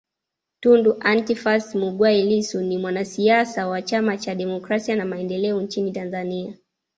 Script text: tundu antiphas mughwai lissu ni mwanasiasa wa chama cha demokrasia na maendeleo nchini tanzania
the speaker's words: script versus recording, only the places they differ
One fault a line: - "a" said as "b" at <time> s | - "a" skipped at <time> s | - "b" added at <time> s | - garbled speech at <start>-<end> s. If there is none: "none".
none